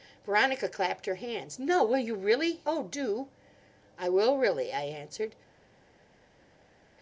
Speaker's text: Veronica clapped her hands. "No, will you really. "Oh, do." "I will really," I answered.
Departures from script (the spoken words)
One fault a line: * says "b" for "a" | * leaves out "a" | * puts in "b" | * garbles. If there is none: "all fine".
all fine